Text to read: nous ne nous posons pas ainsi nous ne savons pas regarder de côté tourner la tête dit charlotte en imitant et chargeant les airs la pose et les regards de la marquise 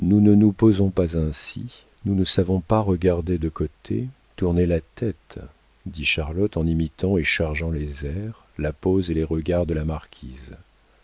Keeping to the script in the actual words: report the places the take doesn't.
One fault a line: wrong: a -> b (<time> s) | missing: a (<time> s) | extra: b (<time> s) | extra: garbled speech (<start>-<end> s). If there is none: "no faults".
no faults